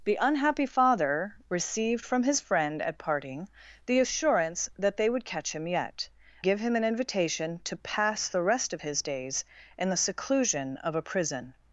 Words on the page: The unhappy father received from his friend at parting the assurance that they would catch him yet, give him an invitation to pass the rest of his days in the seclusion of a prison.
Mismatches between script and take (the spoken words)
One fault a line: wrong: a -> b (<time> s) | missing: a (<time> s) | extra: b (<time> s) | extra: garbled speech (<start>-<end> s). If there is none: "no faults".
no faults